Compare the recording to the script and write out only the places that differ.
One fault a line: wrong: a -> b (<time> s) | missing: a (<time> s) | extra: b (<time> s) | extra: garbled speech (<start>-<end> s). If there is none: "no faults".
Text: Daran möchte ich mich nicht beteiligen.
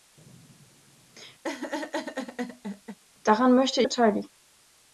missing: ich mich nicht (3.8 s)